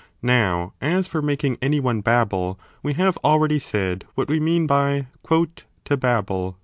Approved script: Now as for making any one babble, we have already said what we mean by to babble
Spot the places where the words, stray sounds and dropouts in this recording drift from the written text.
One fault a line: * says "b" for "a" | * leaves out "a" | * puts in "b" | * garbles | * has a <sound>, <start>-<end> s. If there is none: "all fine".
all fine